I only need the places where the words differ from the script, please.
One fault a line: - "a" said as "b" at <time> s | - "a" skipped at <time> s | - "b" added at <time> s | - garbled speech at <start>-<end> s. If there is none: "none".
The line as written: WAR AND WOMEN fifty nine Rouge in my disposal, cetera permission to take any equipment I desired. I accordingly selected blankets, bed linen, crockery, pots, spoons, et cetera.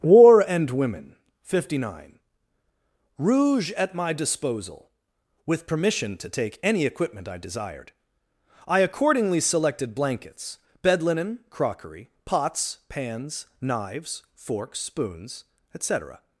- "in" said as "at" at 3.7 s
- "cetera" said as "with" at 5.5 s
- "pans knives forks" added at 12.9 s